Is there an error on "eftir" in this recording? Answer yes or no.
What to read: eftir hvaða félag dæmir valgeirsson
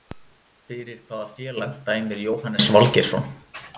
yes